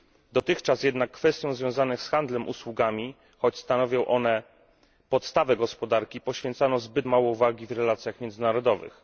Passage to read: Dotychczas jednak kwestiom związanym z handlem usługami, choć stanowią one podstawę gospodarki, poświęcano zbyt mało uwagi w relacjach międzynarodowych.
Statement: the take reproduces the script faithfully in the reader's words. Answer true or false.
true